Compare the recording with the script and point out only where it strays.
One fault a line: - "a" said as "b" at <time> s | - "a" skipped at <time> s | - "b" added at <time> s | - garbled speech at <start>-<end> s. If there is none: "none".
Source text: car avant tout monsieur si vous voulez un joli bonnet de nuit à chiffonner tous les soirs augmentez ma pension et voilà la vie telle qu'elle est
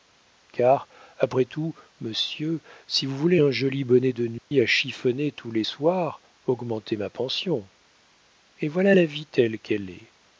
- "avant" said as "après" at 1.2 s